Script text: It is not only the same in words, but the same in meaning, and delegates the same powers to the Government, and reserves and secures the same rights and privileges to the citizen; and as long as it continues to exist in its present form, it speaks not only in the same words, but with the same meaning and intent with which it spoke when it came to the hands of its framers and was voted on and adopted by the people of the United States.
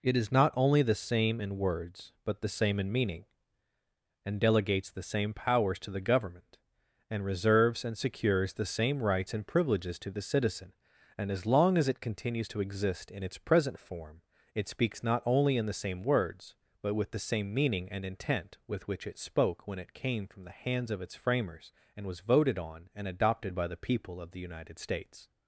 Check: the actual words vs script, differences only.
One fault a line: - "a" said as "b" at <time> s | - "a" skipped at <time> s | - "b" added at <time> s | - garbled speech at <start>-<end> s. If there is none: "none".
- "to" said as "from" at 20.3 s